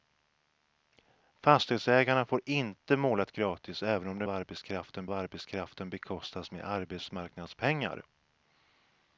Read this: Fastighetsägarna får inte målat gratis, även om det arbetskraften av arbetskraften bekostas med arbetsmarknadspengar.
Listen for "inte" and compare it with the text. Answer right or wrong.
right